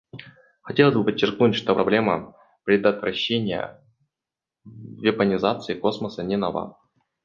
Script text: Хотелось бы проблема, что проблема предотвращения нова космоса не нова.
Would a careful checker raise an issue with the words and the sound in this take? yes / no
yes